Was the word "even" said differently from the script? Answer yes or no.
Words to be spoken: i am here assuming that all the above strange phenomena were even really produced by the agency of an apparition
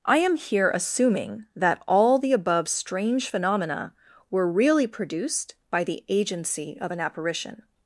yes